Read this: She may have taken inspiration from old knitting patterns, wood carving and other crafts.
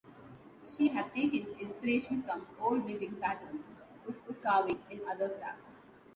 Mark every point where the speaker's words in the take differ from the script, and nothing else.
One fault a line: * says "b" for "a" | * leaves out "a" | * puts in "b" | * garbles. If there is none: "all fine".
* leaves out "may"
* puts in "wood"